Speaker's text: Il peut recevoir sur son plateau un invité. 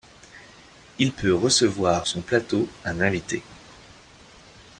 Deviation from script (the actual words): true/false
true